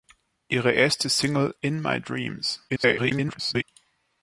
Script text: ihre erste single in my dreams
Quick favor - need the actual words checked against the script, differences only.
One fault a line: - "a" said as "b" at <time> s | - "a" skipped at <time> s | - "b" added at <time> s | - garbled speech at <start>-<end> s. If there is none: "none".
- garbled speech at 2.7-3.6 s